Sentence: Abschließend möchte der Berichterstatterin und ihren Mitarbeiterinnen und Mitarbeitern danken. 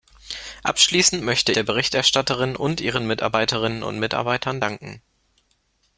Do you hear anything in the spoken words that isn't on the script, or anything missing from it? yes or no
no